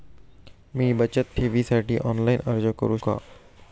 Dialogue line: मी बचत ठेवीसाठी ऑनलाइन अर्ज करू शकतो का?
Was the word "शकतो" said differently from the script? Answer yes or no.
yes